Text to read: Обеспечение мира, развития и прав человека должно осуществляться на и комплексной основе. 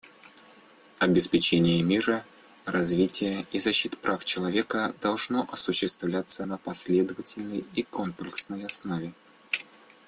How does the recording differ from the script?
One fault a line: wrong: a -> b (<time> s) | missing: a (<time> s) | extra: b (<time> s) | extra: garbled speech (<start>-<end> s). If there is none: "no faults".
extra: защиты (3.6 s)
extra: последовательной (6.6 s)